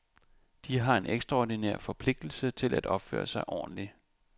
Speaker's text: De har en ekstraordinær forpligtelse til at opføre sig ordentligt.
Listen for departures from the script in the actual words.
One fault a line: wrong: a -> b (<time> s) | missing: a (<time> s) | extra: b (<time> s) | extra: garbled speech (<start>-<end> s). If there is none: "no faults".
no faults